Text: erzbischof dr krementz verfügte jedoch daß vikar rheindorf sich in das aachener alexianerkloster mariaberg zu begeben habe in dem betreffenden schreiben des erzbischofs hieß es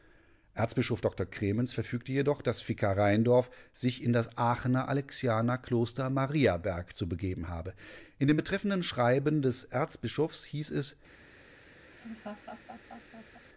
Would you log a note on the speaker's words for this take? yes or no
no